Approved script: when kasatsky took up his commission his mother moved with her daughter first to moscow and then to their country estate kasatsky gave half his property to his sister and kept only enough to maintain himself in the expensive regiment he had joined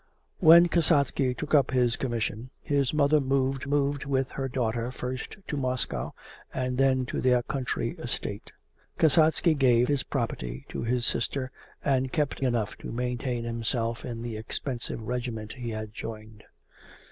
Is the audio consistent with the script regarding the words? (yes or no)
no